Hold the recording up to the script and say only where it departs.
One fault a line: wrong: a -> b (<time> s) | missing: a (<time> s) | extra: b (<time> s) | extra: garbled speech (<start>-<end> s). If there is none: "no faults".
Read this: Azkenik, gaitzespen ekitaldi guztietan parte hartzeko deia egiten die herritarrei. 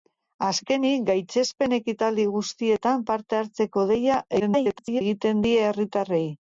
extra: garbled speech (4.4-5.0 s)